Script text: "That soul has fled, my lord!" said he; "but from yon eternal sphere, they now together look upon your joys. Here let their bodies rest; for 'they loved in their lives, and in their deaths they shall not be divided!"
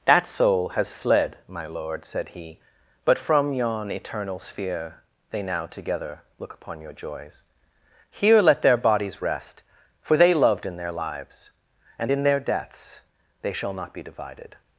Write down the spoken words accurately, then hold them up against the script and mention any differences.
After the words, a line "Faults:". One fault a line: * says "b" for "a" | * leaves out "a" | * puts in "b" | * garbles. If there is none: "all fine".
"That soul has fled, my lord!" said he; "but from yon eternal sphere, they now together look upon your joys. Here let their bodies rest; for 'they loved in their lives, and in their deaths they shall not be divided!"
Faults:
all fine